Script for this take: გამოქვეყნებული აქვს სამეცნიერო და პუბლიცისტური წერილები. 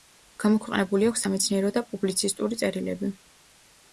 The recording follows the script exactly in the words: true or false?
true